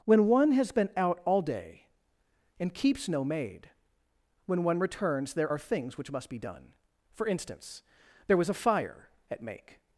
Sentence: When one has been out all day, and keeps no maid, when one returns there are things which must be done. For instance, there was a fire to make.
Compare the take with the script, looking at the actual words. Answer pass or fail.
fail